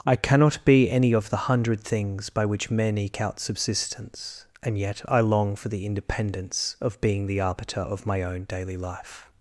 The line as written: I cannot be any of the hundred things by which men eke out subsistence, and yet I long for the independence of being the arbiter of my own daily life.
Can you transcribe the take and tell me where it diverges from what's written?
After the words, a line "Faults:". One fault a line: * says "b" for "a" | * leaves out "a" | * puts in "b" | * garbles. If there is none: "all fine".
I cannot be any of the hundred things by which men eke out subsistence, and yet I long for the independence of being the arbiter of my own daily life.
Faults:
all fine